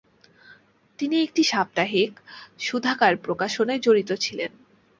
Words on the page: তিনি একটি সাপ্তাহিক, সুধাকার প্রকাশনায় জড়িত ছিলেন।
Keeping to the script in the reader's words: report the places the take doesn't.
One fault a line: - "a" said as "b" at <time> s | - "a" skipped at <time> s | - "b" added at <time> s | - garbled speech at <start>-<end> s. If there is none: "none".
none